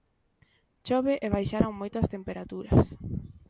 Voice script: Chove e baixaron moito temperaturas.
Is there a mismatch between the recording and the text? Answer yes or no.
yes